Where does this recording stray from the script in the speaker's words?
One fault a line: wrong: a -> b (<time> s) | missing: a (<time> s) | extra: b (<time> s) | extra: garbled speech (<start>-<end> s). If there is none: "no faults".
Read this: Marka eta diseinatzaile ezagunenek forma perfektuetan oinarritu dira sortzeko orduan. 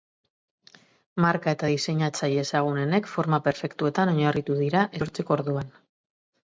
no faults